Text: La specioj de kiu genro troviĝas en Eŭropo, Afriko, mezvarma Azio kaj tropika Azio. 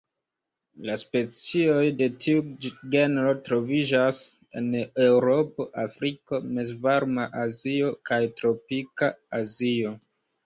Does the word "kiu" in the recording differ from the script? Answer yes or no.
yes